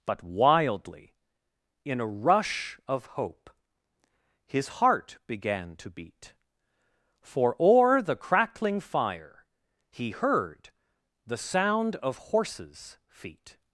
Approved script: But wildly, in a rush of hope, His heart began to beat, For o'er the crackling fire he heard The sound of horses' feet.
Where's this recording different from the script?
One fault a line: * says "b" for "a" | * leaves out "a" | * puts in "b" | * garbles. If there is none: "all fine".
all fine